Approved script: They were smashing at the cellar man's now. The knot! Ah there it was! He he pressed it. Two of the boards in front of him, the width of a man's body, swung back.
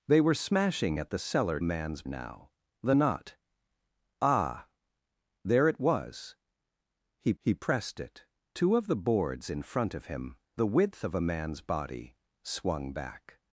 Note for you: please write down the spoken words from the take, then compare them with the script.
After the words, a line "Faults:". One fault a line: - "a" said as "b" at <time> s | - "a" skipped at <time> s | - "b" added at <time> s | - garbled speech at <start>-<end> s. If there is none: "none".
They were smashing at the cellar man's now. The knot! Ah there it was! He he pressed it. Two of the boards in front of him, the width of a man's body, swung back.
Faults:
none